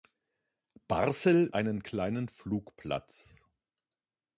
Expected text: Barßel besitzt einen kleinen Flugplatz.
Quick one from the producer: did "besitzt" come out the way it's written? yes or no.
no